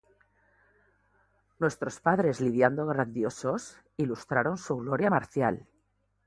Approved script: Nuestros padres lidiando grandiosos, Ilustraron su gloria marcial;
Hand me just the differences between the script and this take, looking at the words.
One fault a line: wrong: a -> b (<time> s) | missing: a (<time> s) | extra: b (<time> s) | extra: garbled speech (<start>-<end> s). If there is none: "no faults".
no faults